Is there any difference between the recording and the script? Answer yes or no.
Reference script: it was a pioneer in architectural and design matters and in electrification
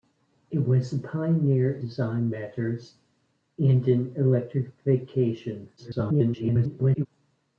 yes